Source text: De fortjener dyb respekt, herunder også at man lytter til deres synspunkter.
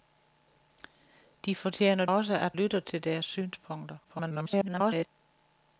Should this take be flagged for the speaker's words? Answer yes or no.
yes